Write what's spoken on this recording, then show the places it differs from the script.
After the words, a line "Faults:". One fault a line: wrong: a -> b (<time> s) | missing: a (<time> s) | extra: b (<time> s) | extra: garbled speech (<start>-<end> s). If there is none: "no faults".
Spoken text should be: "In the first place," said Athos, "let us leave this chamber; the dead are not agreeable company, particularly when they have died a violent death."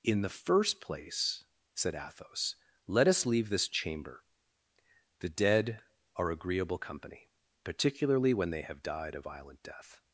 "In the first place," said Athos, "let us leave this chamber; the dead are agreeable company, particularly when they have died a violent death."
Faults:
missing: not (6.3 s)